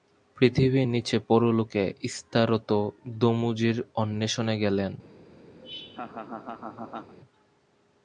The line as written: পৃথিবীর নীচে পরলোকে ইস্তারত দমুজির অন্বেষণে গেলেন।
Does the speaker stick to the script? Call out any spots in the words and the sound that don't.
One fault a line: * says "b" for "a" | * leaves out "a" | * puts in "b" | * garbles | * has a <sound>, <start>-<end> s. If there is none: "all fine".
* has a laugh, 5.6-7.1 s